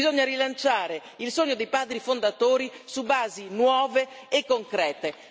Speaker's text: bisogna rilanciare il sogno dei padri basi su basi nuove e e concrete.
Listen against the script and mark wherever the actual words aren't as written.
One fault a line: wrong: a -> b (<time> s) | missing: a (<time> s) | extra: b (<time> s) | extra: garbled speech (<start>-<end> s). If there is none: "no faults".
wrong: basi -> fondatori (2.0 s)
missing: e (4.5 s)